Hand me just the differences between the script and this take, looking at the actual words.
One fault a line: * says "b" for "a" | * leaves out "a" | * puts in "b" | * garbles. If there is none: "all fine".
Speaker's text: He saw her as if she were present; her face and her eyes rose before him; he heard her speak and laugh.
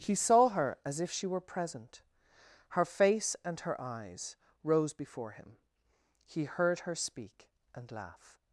all fine